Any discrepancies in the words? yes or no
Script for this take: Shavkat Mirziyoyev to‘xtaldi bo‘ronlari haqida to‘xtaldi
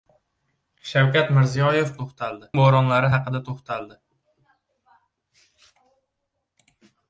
no